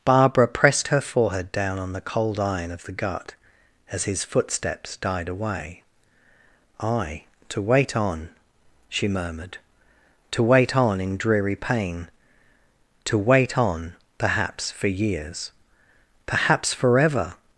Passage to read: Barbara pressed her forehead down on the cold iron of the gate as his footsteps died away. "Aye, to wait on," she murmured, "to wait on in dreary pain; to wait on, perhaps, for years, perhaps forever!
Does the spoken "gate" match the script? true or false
false